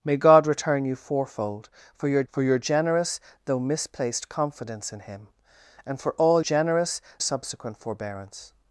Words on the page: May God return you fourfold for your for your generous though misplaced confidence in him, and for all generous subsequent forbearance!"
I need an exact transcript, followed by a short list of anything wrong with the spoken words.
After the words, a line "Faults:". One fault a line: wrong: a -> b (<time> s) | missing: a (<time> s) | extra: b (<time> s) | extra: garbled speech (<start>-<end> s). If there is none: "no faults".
May God return you fourfold for your for your generous though misplaced confidence in him, and for all generous subsequent forbearance!"
Faults:
no faults